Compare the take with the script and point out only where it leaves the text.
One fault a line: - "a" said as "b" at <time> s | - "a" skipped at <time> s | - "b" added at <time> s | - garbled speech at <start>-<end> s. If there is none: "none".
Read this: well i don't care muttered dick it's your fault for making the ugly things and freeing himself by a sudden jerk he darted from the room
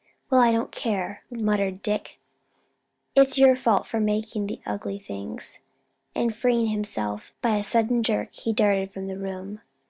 none